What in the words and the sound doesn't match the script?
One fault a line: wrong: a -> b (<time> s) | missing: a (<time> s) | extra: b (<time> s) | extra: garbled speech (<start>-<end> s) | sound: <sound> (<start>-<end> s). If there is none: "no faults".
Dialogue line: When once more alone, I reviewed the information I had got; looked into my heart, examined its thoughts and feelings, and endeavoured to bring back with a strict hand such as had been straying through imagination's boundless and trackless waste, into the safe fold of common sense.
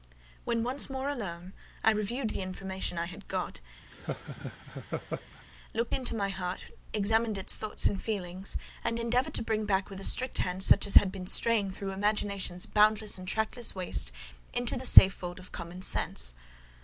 sound: laugh (3.9-5.4 s)